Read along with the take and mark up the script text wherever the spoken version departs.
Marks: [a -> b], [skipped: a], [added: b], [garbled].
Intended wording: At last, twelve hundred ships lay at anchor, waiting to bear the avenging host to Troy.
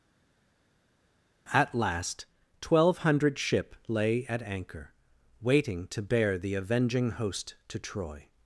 At last, twelve hundred [ships -> ship] lay at anchor, waiting to bear the avenging host to Troy.